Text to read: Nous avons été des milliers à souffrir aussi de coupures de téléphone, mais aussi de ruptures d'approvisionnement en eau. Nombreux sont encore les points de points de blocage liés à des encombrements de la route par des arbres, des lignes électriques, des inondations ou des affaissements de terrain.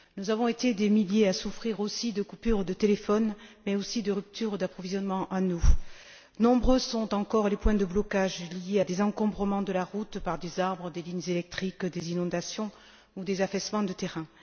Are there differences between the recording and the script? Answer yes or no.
yes